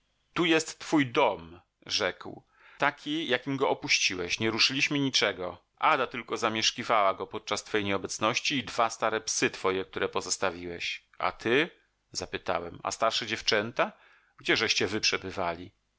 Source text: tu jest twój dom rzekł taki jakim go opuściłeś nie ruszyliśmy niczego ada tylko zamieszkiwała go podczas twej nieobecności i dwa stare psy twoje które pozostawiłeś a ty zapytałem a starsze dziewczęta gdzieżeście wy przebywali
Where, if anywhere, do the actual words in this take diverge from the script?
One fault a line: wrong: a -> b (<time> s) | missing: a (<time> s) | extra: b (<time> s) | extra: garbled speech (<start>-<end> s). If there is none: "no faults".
no faults